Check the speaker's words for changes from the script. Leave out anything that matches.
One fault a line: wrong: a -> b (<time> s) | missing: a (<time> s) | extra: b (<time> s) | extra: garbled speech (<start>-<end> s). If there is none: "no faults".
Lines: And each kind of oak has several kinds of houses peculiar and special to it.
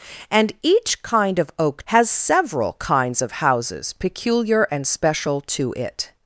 no faults